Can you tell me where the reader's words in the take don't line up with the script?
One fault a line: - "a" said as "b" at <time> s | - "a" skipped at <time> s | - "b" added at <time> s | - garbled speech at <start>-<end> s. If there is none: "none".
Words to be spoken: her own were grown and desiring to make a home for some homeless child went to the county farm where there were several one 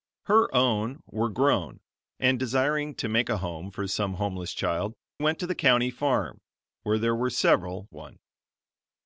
none